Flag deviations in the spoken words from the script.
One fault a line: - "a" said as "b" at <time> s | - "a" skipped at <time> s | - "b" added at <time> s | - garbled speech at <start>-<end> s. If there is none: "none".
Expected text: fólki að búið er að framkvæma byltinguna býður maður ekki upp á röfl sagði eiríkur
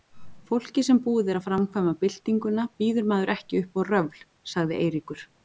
- "að" said as "sem" at 0.9 s